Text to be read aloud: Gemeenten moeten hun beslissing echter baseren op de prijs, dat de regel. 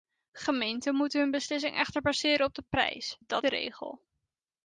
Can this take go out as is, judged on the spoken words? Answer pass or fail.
pass